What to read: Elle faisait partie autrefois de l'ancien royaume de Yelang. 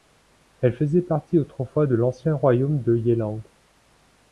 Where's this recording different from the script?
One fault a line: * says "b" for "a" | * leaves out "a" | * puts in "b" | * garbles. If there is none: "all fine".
all fine